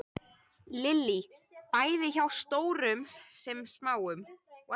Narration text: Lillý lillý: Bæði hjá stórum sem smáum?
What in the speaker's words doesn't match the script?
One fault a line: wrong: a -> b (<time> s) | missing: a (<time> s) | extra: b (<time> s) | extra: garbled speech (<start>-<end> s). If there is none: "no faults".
missing: lillý (1.2 s)